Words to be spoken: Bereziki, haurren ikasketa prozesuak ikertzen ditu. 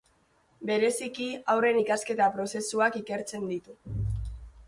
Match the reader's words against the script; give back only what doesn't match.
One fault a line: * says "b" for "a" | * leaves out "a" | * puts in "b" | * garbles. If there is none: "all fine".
all fine